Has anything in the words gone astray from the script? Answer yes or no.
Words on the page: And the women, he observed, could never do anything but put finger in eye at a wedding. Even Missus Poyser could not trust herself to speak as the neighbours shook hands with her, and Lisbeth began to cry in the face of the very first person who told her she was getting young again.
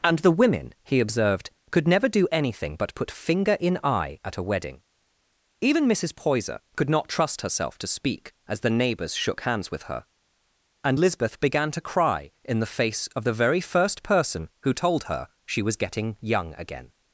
no